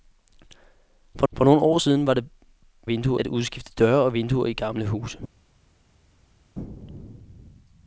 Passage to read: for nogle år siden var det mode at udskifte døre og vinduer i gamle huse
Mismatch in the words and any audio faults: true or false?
true